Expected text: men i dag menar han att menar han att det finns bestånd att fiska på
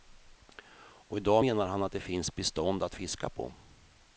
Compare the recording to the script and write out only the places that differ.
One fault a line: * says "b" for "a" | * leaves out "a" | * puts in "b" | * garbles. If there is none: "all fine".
* says "och" for "men"
* leaves out "menar han att"